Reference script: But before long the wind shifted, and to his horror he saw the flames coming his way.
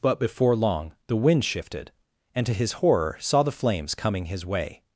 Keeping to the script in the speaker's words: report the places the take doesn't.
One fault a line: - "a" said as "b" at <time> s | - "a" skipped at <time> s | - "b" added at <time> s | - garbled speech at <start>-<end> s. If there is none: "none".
- "he" skipped at 3.2 s